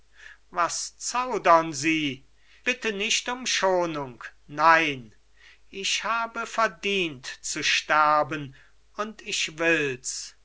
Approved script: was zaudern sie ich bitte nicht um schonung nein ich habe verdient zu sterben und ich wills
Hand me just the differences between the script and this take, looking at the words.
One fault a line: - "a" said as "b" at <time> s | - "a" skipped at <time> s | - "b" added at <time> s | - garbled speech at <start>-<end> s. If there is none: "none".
- "ich" skipped at 2.2 s